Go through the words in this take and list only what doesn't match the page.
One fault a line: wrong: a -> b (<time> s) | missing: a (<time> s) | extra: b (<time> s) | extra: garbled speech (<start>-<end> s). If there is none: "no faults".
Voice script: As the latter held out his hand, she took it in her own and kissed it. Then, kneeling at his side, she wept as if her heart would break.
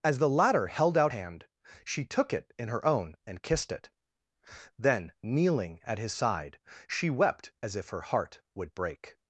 missing: his (1.1 s)